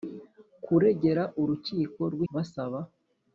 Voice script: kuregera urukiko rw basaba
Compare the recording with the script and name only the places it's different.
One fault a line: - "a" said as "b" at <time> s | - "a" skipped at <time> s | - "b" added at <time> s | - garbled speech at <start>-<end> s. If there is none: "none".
none